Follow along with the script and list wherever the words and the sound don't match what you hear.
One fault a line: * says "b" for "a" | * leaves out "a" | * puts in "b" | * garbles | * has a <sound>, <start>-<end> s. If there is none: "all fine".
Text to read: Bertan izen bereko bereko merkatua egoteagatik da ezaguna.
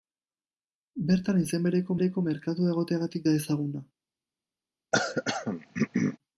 * has a throat clearing, 4.9-6.2 s